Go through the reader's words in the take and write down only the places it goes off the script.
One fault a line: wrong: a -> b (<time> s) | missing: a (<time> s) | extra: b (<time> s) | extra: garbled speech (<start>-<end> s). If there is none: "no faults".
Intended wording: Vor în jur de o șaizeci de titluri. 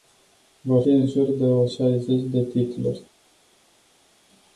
no faults